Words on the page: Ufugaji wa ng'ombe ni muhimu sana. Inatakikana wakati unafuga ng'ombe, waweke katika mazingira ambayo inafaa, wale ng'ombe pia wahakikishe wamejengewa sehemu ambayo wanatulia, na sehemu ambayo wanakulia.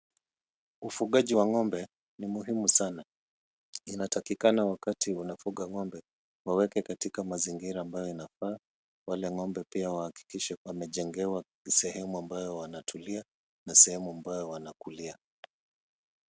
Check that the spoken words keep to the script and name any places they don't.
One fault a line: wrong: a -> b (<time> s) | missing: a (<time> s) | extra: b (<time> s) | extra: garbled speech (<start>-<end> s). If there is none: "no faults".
no faults